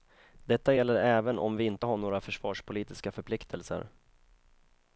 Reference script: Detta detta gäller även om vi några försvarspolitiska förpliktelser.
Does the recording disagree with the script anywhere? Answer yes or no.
yes